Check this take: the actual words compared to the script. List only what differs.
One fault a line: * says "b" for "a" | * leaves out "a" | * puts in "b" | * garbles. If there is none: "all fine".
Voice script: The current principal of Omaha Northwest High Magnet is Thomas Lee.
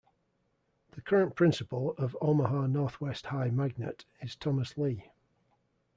all fine